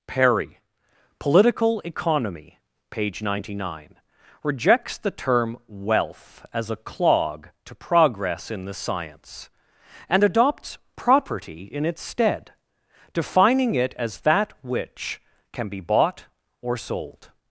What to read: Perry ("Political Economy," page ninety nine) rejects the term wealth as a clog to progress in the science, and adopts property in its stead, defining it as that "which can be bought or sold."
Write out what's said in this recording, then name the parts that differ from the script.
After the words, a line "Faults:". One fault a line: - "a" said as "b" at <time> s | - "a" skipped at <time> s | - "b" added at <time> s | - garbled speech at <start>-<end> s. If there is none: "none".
Perry ("Political Economy," page ninety nine) rejects the term wealth as a clog to progress in the science, and adopts property in its stead, defining it as that "which can be bought or sold."
Faults:
none